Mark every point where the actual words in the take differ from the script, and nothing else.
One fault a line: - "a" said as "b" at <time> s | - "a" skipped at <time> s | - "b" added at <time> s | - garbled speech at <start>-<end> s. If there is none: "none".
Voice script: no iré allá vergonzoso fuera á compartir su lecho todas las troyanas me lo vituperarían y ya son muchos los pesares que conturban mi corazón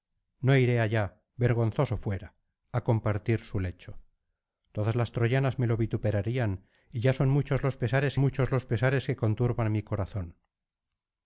- "muchos los pesares" added at 8.2 s